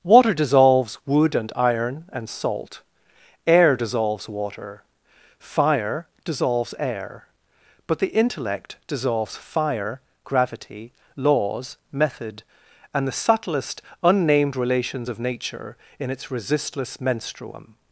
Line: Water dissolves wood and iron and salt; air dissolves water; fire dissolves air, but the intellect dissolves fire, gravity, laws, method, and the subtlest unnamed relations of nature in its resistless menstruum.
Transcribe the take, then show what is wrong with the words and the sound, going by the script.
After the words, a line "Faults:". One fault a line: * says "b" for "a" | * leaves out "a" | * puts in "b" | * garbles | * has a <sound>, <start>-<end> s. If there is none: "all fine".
Water dissolves wood and iron and salt; air dissolves water; fire dissolves air, but the intellect dissolves fire, gravity, laws, method, and the subtlest unnamed relations of nature in its resistless menstruum.
Faults:
all fine